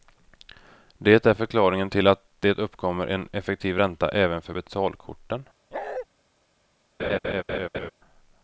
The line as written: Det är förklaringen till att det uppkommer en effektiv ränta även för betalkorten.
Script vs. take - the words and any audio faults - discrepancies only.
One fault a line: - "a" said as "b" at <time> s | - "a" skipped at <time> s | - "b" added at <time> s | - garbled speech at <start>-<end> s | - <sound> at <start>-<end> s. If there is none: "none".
- bark at 5.7-6.1 s
- laugh at 7.0-7.9 s